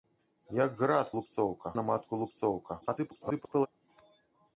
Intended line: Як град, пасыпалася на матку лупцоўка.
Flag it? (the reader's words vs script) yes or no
yes